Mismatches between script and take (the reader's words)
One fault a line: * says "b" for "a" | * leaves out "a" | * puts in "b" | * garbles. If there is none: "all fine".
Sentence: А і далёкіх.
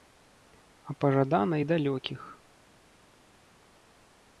* puts in "пажадана"